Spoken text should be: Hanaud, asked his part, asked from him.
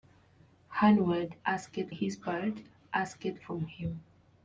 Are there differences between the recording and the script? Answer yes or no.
no